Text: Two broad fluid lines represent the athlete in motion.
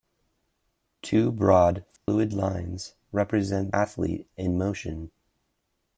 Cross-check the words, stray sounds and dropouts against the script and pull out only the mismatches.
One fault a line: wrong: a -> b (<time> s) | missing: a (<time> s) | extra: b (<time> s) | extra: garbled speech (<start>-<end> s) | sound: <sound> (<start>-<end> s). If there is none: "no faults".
sound: dropout (2.0-2.1 s)
missing: the (3.8 s)